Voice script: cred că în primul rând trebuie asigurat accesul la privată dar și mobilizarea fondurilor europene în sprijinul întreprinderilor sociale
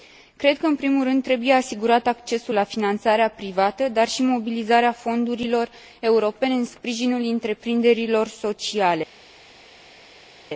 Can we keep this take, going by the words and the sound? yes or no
no